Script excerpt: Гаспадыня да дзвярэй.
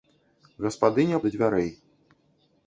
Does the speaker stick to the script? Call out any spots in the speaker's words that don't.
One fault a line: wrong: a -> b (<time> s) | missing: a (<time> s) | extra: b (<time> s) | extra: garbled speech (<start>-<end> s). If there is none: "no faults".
no faults